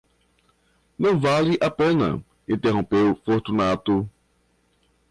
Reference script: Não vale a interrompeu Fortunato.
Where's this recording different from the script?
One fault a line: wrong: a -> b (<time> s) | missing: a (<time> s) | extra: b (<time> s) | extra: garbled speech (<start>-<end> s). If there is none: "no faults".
extra: pena (1.7 s)